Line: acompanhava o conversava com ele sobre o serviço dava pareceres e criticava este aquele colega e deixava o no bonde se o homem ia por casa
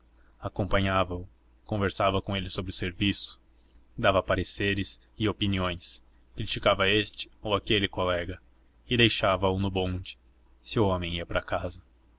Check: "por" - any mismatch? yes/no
yes